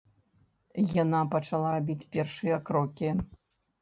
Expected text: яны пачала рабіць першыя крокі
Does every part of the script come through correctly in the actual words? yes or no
no